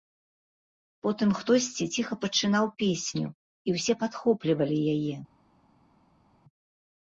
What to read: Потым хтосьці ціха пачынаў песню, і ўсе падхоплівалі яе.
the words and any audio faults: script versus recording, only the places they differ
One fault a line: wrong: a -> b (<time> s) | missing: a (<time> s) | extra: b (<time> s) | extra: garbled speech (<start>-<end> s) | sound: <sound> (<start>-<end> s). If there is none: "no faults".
no faults